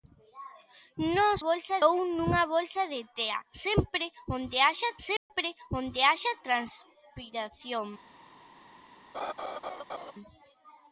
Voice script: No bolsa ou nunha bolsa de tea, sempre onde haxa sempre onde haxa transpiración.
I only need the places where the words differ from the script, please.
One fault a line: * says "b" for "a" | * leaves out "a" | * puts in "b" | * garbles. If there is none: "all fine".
all fine